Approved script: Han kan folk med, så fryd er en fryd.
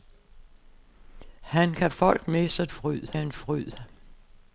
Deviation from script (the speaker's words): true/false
false